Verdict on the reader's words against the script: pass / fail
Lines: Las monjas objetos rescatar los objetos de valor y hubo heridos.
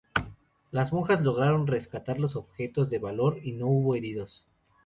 fail